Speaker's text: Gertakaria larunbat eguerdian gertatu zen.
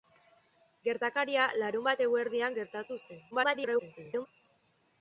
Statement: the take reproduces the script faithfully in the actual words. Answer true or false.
false